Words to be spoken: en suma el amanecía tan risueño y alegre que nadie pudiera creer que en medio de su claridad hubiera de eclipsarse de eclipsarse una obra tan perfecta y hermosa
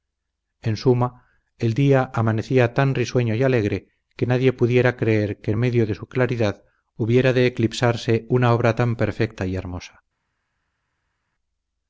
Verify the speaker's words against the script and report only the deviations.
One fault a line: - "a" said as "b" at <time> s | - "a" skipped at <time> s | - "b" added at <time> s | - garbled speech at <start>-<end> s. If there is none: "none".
- "día" added at 1.8 s
- "de eclipsarse" skipped at 8.2 s